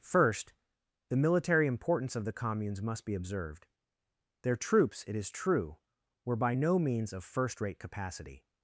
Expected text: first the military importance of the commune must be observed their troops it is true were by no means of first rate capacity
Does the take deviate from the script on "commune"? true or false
true